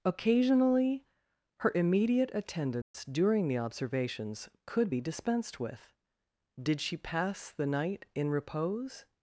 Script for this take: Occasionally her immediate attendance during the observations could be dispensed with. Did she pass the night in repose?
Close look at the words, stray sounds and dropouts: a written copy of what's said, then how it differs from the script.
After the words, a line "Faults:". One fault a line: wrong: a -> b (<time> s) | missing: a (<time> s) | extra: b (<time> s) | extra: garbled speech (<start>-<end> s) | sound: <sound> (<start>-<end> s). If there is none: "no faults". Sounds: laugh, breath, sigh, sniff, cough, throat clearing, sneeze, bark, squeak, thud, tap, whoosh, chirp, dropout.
Occasionally her immediate attendance during the observations could be dispensed with. Did she pass the night in repose?
Faults:
sound: dropout (2.8-2.9 s)